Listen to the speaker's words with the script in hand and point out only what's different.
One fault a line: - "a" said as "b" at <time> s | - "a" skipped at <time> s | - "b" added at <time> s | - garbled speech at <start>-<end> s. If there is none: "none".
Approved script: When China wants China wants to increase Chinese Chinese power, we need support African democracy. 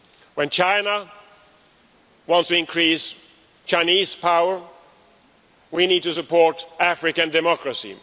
- "China wants" skipped at 2.5 s
- "Chinese" skipped at 4.1 s
- "to" added at 6.0 s